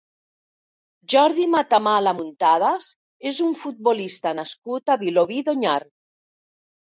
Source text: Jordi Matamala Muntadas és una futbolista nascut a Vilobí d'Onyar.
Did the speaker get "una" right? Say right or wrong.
wrong